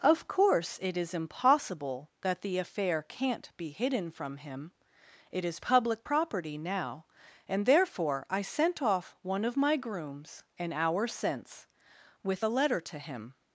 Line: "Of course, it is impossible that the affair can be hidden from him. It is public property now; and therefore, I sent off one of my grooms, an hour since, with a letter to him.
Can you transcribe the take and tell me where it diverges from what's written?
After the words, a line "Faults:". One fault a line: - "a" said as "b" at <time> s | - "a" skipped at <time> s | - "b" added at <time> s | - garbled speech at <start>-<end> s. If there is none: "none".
"Of course, it is impossible that the affair can't be hidden from him. It is public property now; and therefore, I sent off one of my grooms, an hour since, with a letter to him.
Faults:
- "can" said as "can't" at 3.0 s